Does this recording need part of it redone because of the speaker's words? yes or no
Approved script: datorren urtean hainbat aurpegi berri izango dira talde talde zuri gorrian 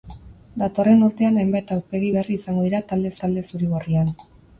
no